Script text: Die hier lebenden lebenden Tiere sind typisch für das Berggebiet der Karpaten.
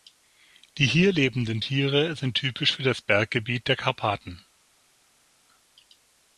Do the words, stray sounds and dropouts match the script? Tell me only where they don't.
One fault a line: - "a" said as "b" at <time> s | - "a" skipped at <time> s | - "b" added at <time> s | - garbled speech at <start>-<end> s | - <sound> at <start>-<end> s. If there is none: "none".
- "lebenden" skipped at 1.6 s